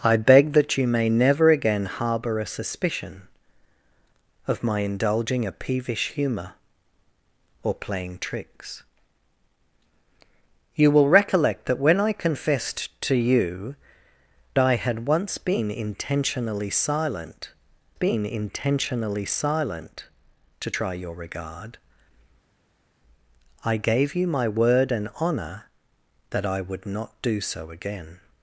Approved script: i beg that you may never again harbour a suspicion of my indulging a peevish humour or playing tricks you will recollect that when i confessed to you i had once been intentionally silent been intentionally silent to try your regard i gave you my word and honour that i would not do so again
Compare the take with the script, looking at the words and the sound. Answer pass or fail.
pass